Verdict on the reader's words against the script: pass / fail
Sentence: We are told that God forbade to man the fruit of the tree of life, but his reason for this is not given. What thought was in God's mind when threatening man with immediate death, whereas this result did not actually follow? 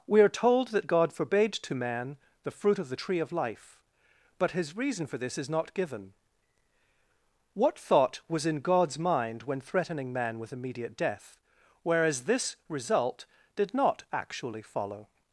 pass